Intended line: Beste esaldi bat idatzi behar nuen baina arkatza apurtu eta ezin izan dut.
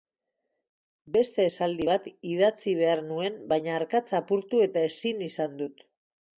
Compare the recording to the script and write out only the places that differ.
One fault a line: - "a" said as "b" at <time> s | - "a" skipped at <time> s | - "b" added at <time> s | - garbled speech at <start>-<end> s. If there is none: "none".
none